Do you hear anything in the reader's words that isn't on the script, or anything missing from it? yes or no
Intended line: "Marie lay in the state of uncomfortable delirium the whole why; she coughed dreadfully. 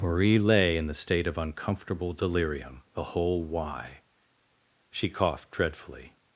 no